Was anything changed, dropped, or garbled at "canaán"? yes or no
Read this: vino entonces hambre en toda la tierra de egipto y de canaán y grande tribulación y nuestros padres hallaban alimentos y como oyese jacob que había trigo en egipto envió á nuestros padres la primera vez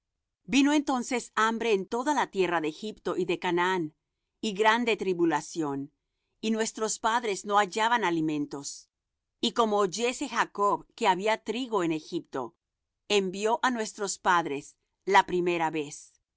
no